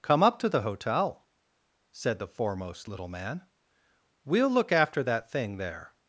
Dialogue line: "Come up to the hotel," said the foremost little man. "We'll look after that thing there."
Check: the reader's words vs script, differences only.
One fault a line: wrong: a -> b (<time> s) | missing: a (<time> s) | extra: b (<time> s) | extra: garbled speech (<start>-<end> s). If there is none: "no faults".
no faults